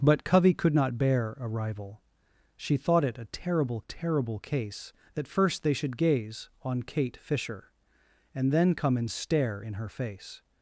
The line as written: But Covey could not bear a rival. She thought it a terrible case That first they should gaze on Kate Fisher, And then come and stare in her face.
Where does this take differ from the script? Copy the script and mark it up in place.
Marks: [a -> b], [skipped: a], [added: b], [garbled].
But Covey could not bear a rival. She thought it a terrible [added: terrible] case That first they should gaze on Kate Fisher, And then come and stare in her face.